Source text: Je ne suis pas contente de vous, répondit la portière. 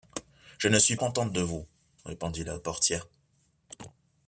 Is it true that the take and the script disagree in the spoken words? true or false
true